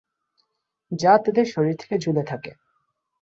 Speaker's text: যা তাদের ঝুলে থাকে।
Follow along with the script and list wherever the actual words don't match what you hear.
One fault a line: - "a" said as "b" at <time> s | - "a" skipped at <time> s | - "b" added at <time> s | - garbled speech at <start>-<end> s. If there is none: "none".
- "শরীর থেকে" added at 1.4 s